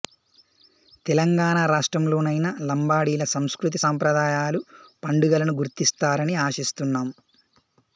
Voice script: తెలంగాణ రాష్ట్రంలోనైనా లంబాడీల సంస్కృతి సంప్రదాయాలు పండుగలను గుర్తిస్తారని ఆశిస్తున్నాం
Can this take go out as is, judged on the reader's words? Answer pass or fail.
pass